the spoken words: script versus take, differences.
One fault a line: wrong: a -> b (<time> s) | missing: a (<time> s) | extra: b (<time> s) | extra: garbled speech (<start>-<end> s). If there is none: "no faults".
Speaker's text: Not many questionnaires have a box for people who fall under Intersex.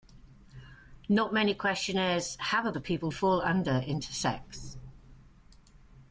missing: box (2.7 s)
missing: who (3.1 s)